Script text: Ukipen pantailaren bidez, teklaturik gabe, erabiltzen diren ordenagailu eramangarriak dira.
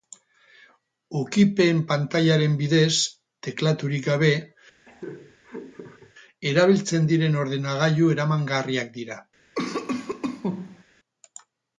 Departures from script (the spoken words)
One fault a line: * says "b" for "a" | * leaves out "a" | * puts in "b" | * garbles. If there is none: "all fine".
all fine